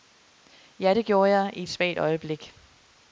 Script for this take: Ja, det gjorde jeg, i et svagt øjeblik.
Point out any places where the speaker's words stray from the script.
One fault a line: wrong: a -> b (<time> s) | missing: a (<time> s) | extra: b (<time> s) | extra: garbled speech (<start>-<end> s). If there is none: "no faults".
no faults